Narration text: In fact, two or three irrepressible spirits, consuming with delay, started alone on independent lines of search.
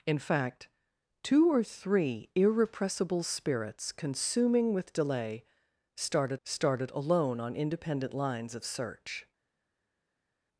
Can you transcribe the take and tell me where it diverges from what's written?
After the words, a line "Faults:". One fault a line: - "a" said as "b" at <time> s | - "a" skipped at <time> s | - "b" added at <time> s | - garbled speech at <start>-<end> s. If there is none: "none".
In fact, two or three irrepressible spirits, consuming with delay, started started alone on independent lines of search.
Faults:
- "started" added at 6.4 s